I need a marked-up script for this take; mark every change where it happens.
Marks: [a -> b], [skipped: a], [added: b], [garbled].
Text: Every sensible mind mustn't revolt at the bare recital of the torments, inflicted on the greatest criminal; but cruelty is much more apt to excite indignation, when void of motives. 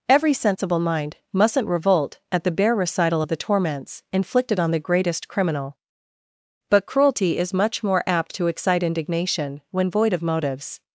Every sensible mind mustn't revolt at the bare recital of the torments, inflicted on the greatest criminal; but cruelty is much more apt to excite indignation, when void of motives.